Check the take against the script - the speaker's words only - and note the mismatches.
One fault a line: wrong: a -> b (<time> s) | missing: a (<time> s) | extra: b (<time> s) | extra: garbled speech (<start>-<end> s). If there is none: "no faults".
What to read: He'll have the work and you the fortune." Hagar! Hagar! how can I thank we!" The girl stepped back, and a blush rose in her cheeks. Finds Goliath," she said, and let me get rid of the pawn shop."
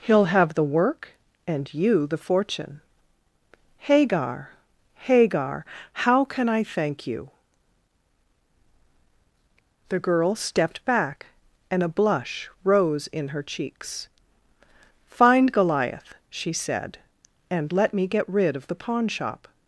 wrong: we -> you (7.1 s)
wrong: Finds -> Find (15.1 s)